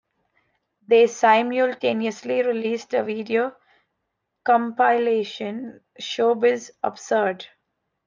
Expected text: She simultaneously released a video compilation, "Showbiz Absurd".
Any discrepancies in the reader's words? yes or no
yes